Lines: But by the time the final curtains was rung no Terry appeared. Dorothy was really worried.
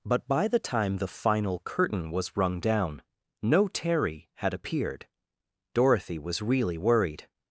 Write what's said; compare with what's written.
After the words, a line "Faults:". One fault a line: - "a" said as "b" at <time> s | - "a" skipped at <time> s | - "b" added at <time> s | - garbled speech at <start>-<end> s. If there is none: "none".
But by the time the final curtain was rung down, no Terry had appeared. Dorothy was really worried.
Faults:
- "curtains" said as "curtain" at 1.6 s
- "down" added at 2.6 s
- "had" added at 4.3 s